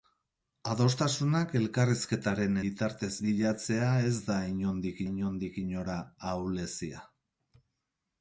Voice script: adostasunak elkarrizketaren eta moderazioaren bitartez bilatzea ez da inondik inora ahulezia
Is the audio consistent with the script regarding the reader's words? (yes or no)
no